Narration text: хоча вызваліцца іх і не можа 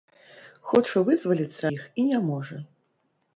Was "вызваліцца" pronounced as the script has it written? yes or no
yes